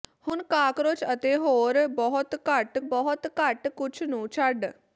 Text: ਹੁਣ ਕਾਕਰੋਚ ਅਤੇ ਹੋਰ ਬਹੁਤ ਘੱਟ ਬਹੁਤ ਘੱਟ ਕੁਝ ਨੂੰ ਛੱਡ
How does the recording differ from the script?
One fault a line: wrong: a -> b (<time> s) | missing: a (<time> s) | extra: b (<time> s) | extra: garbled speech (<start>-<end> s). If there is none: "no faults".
no faults